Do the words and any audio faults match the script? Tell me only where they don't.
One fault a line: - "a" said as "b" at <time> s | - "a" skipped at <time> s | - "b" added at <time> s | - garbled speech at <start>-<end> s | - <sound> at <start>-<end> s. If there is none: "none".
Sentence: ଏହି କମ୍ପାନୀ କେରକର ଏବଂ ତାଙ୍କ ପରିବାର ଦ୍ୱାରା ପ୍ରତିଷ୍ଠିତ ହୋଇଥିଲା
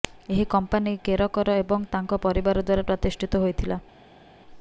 none